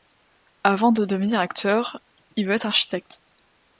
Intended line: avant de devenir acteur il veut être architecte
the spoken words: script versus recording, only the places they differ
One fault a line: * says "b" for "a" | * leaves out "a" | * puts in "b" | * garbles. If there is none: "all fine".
all fine